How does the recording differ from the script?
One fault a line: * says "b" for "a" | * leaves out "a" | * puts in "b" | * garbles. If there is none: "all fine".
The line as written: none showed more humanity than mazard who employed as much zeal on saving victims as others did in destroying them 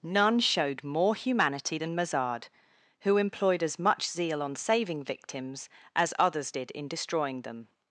all fine